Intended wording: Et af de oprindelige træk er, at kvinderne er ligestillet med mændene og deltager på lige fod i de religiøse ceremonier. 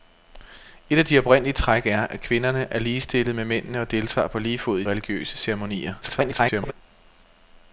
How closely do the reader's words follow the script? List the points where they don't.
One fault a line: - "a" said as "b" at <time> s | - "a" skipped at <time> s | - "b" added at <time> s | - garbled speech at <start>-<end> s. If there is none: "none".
- "de" skipped at 4.8 s
- garbled speech at 6.0-6.7 s